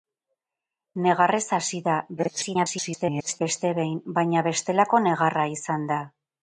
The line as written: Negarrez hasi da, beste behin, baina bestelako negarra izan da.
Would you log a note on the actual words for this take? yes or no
yes